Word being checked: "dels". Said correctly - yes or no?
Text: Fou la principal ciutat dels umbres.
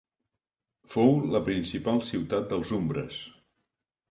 yes